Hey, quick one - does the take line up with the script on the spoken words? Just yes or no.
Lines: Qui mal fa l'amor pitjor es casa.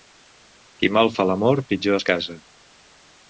yes